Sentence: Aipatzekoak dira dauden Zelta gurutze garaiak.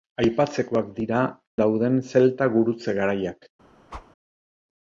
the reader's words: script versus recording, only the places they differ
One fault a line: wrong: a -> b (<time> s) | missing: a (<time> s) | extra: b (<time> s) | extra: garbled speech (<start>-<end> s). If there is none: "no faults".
no faults